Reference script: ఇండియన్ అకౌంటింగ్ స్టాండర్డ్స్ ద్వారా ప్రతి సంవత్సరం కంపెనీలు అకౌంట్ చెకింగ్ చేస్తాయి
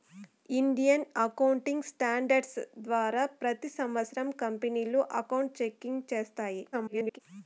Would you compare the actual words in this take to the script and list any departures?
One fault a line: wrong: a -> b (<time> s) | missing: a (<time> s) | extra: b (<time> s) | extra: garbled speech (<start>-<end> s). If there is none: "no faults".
extra: garbled speech (6.7-7.2 s)